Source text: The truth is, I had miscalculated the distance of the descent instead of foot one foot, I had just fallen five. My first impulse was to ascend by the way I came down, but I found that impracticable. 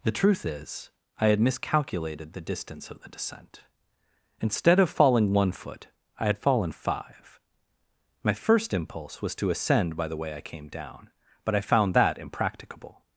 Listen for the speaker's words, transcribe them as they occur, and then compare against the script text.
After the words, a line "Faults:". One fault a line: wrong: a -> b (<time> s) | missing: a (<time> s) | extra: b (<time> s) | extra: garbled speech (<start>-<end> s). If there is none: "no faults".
The truth is, I had miscalculated the distance of the descent instead of falling one foot, I had fallen five. My first impulse was to ascend by the way I came down, but I found that impracticable.
Faults:
wrong: foot -> falling (4.9 s)
missing: just (6.4 s)